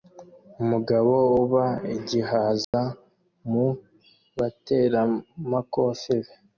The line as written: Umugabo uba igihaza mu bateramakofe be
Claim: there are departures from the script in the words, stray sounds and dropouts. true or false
true